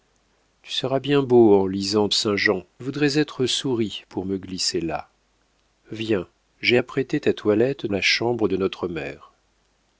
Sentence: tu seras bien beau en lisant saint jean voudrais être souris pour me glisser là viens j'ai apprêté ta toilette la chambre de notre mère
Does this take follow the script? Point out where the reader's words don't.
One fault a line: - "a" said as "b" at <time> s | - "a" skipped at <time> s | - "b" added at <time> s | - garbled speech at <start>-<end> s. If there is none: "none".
none